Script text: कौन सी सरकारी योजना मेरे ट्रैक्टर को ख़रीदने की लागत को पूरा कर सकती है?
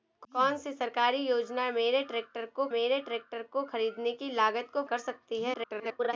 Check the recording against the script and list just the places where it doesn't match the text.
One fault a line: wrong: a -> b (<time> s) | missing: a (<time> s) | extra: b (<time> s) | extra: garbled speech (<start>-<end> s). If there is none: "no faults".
extra: मेरे ट्रैक्टर को (2.7 s)
missing: पूरा (4.8 s)
extra: garbled speech (5.5-6.1 s)